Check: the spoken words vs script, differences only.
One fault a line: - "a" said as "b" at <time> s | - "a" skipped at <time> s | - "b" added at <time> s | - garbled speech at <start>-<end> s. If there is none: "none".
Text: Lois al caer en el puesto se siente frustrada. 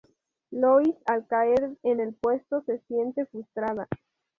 none